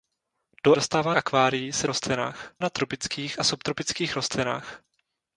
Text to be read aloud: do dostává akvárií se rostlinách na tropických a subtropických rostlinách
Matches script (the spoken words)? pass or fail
pass